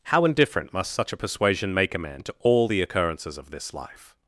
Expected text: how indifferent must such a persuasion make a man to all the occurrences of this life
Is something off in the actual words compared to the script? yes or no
no